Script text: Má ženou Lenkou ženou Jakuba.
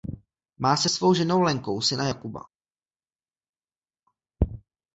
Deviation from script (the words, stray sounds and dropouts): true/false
true